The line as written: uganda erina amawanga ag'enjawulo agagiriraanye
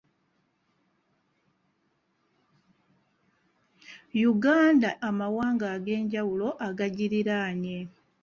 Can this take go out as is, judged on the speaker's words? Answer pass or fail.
fail